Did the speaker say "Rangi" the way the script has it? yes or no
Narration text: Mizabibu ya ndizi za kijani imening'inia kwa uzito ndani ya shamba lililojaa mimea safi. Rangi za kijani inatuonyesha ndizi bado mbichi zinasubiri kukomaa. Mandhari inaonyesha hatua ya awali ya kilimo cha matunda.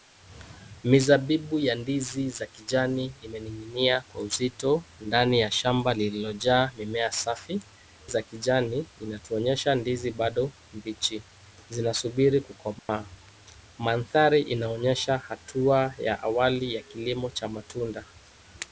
no